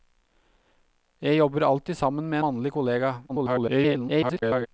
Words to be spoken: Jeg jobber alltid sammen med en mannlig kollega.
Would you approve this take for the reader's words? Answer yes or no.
no